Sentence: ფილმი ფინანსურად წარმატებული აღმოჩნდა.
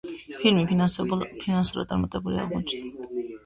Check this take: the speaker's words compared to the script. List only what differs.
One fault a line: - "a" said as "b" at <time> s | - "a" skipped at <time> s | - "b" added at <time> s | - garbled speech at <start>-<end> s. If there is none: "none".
none